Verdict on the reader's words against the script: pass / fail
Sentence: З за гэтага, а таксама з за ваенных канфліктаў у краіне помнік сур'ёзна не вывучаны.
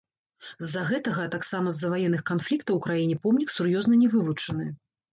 pass